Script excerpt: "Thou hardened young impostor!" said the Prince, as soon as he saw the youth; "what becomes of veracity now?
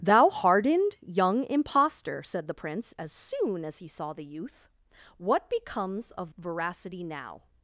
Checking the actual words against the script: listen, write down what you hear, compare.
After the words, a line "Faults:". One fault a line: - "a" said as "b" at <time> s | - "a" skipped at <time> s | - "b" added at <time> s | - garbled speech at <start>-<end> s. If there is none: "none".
"Thou hardened young impostor!" said the Prince, as soon as he saw the youth; "what becomes of veracity now?
Faults:
none